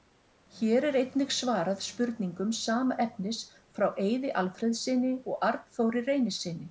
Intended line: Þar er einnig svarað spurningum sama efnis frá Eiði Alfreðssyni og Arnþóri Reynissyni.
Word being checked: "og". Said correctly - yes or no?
yes